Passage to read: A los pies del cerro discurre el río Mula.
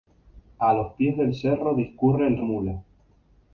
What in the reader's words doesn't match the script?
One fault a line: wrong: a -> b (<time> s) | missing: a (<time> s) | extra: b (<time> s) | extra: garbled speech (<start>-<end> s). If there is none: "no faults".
missing: río (2.4 s)